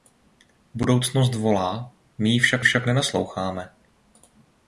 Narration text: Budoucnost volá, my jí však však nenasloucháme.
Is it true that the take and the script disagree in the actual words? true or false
false